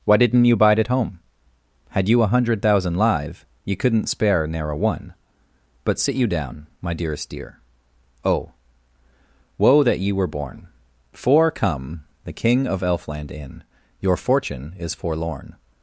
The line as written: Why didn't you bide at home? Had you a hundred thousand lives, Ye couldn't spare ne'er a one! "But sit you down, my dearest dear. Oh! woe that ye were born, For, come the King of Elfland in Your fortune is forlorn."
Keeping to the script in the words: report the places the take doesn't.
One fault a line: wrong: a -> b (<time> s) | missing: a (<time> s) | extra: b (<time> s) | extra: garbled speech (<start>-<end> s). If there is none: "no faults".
wrong: lives -> live (3.0 s)